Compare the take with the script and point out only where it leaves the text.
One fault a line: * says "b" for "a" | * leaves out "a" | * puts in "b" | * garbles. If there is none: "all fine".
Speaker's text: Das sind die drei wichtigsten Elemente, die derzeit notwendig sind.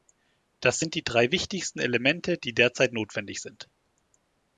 all fine